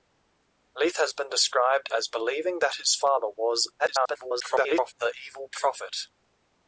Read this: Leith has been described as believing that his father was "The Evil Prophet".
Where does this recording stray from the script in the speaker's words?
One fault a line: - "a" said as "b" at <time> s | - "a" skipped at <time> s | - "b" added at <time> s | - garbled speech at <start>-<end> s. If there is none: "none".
- garbled speech at 3.8-4.9 s